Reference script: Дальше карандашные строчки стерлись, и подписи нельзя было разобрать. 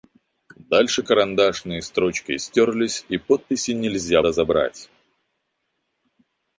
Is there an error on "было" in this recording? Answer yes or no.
yes